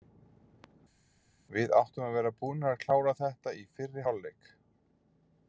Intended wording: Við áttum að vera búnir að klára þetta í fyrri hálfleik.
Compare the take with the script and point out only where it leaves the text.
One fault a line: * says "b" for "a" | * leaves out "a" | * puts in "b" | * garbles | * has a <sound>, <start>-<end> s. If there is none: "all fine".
all fine